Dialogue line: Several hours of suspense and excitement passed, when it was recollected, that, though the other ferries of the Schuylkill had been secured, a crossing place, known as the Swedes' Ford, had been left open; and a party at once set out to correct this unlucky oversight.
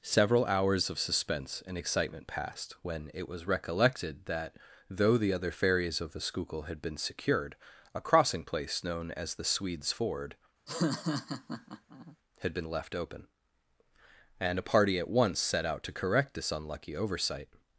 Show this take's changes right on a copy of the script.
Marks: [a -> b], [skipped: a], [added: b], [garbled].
Several hours of suspense and excitement passed, when it was recollected, that, though the other ferries of the Schuylkill had been secured, a crossing place, known as the Swedes' Ford, had been left open; and a party at once set out to correct this unlucky oversight.